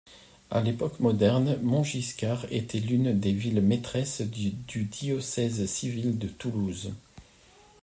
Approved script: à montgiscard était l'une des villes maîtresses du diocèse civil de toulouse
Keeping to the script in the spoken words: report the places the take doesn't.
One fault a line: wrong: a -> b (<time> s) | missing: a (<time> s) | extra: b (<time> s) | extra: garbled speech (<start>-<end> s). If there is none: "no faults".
extra: l'époque moderne (0.6 s)